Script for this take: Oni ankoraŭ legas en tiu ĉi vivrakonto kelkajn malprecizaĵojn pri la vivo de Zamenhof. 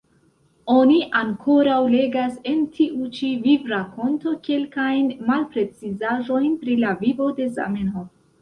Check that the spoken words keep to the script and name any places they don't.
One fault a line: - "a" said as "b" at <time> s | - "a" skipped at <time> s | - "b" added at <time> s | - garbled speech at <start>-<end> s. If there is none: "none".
none